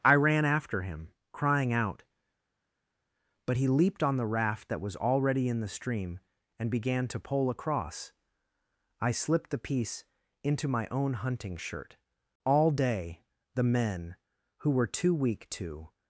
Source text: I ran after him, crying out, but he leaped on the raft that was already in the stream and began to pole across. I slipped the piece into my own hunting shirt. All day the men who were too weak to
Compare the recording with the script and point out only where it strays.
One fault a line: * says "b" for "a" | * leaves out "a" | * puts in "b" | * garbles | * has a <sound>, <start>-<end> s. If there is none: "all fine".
all fine